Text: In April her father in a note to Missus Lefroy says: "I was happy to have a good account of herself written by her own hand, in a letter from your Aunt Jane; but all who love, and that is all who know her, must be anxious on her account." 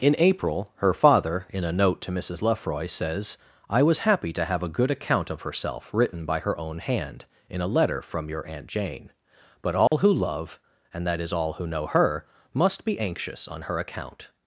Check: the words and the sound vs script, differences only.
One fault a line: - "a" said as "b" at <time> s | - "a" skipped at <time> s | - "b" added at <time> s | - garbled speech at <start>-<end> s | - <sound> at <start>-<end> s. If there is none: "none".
- dropout at 9.9-9.9 s